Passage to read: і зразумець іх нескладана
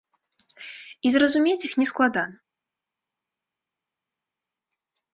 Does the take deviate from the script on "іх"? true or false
false